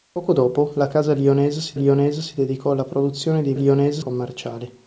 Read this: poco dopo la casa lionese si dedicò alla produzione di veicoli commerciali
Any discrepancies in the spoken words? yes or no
yes